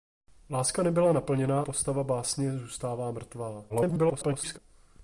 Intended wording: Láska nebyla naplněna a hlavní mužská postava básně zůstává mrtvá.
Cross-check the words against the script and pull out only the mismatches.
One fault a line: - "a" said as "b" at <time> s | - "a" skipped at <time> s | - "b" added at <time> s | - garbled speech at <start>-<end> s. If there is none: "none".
- "a hlavní mužská" skipped at 1.6 s
- garbled speech at 3.7-4.6 s